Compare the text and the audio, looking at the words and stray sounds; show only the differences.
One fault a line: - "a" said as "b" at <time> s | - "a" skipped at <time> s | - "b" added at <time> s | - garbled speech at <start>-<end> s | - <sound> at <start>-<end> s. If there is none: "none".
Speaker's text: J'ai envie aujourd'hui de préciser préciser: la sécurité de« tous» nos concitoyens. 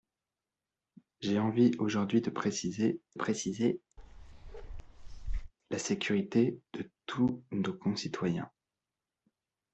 - bark at 4.0-5.5 s